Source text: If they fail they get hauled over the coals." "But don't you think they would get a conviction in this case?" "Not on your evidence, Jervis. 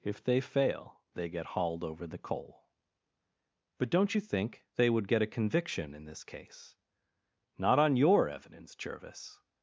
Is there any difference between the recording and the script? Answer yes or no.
yes